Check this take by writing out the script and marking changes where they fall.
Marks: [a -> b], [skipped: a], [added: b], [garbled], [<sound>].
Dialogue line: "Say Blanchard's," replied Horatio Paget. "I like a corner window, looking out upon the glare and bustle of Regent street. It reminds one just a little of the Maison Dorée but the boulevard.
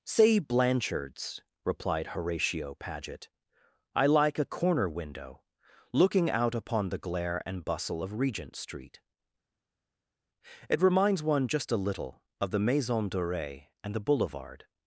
"Say Blanchard's," replied Horatio Paget. "I like a corner window, looking out upon the glare and bustle of Regent street. It reminds one just a little of the Maison Dorée [but -> and] the boulevard.